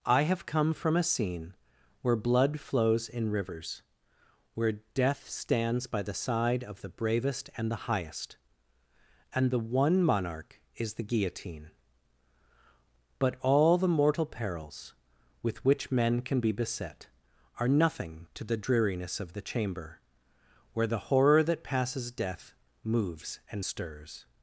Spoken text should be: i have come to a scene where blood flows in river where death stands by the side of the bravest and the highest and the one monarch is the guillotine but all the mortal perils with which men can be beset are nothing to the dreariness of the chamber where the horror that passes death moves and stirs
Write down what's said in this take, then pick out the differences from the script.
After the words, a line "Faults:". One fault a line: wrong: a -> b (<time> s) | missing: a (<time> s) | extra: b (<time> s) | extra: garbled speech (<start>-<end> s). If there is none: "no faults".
i have come from a scene where blood flows in rivers where death stands by the side of the bravest and the highest and the one monarch is the guillotine but all the mortal perils with which men can be beset are nothing to the dreariness of the chamber where the horror that passes death moves and stirs
Faults:
wrong: to -> from (0.7 s)
wrong: river -> rivers (3.3 s)